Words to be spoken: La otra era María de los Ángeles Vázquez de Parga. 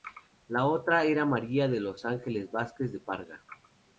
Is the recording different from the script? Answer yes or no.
no